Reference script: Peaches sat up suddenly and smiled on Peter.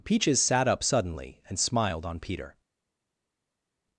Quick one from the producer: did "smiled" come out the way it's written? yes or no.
yes